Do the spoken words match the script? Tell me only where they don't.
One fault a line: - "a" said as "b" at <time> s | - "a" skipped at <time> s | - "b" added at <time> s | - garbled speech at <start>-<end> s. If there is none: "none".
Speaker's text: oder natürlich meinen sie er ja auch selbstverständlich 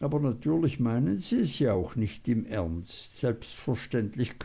- "oder" said as "aber" at 0.0 s
- "er" said as "es" at 1.4 s
- "nicht im ernst" added at 2.0 s